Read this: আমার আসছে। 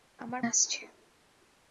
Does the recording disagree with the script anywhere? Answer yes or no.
no